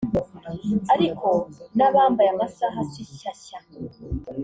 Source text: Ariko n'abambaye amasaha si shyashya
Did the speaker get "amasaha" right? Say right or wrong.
right